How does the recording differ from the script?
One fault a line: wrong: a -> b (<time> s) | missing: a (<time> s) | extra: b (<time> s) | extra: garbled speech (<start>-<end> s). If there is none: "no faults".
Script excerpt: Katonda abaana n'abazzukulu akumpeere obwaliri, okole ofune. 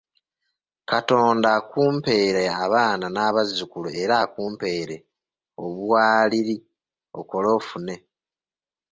extra: akumpeere (1.6 s)
extra: era (4.0 s)